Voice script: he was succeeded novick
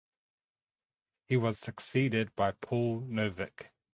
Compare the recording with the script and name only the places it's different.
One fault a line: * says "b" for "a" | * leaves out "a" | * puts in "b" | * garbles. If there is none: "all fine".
* puts in "by paul"